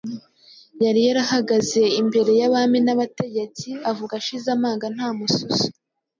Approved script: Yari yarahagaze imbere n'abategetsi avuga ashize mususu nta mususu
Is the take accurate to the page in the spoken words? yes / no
no